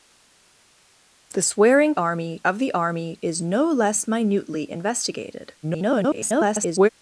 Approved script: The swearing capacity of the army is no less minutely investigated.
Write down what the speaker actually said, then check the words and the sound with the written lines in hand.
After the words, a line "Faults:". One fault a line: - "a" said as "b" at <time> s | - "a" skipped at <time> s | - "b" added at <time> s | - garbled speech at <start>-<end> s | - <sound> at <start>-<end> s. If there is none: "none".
The swearing army of the army is no less minutely investigated. [garbled]
Faults:
- "capacity" said as "army" at 1.9 s
- garbled speech at 5.6-6.9 s